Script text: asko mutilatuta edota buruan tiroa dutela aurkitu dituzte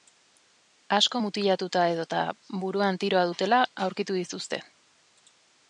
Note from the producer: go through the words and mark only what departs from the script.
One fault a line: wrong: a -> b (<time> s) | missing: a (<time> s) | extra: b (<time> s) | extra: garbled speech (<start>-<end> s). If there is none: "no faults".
no faults